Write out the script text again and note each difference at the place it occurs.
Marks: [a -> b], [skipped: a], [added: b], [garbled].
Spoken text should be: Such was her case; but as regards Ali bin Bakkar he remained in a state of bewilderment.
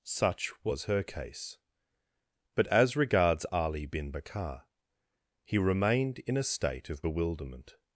Such was her case; but as regards Ali bin Bakkar he remained in a state of bewilderment.